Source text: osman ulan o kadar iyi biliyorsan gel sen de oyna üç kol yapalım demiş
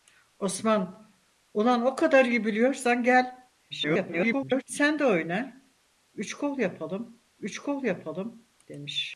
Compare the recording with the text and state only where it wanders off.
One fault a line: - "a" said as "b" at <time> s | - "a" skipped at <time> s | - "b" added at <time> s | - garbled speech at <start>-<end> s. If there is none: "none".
- garbled speech at 3.7-4.6 s
- "üç kol yapalım" added at 7.4 s